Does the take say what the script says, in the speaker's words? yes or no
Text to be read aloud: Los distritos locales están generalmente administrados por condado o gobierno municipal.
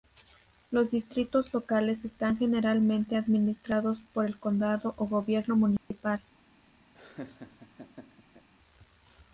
no